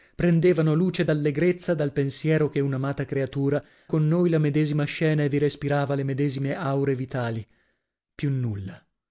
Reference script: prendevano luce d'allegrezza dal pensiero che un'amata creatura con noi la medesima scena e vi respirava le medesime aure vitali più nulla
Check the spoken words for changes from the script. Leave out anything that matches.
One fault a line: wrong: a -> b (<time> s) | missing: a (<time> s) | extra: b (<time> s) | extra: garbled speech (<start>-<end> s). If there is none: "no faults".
no faults